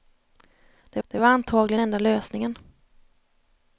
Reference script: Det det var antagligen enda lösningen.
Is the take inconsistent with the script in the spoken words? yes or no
no